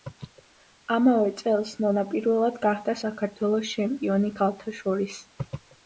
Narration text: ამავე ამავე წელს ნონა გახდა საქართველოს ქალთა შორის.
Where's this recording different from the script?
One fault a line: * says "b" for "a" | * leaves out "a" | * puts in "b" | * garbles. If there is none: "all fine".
* leaves out "ამავე"
* puts in "პირველად"
* puts in "ჩემპიონი"